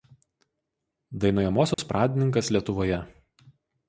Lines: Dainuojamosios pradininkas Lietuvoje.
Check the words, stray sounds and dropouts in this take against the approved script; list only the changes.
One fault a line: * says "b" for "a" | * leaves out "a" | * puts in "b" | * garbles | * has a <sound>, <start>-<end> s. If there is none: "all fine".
* has a dropout, 1.7-1.8 s